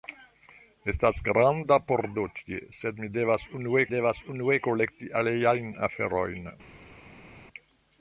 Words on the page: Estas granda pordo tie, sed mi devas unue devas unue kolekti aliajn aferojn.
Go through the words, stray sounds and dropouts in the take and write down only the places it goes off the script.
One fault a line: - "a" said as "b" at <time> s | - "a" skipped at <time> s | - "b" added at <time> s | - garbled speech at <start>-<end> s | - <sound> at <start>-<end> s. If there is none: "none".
none